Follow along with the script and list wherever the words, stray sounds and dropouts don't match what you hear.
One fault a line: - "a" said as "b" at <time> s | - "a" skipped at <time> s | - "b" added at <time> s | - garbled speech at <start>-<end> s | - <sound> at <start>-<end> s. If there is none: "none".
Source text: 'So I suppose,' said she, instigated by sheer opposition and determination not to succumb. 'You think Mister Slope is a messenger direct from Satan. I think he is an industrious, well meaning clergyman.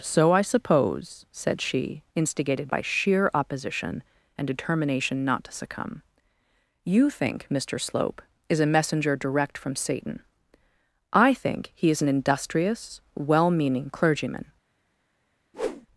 - whoosh at 15.5-15.9 s